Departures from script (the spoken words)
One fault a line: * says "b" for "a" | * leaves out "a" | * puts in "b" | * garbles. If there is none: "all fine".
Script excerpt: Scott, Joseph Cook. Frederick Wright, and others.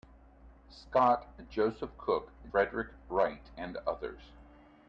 all fine